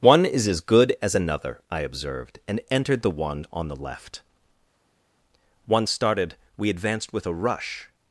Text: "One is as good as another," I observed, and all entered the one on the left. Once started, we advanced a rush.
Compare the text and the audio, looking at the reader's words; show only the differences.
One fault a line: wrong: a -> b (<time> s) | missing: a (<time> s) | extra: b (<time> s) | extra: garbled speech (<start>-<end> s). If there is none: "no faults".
missing: all (2.6 s)
extra: with (7.1 s)